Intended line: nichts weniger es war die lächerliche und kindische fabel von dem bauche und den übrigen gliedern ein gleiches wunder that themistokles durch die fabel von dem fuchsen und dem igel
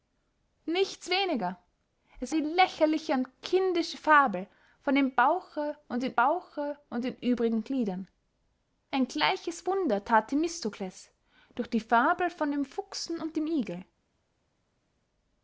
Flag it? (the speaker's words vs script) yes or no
yes